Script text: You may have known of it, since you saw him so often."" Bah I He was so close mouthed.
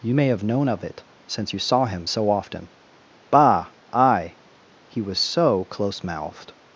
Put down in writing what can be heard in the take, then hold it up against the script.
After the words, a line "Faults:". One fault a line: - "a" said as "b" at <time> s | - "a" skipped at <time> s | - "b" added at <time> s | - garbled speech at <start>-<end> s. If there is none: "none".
You may have known of it, since you saw him so often."" Bah I He was so close mouthed.
Faults:
none